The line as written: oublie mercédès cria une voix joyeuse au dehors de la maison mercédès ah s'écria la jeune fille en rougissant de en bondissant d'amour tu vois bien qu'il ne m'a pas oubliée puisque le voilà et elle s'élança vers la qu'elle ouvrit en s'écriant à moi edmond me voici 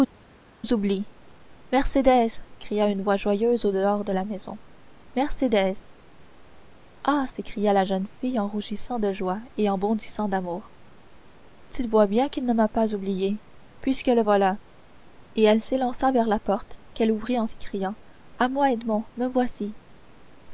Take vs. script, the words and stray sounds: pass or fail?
fail